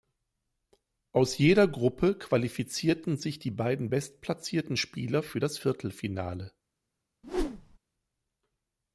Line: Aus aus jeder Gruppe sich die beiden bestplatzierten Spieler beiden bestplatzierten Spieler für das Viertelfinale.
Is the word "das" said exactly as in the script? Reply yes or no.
yes